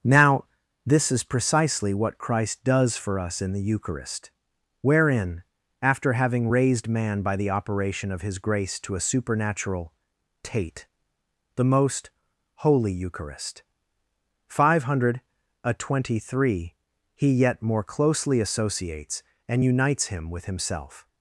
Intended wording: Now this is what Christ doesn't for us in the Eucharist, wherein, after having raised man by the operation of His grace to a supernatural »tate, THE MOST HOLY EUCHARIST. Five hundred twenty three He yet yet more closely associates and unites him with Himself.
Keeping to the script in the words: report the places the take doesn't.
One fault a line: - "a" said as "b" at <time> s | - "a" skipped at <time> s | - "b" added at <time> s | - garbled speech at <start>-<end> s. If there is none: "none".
- "precisely" added at 1.2 s
- "doesn't" said as "does" at 2.6 s
- "yet" skipped at 17.6 s